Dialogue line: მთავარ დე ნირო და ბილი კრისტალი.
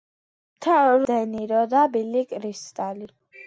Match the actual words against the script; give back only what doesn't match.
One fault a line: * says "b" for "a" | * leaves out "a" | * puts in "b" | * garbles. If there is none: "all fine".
all fine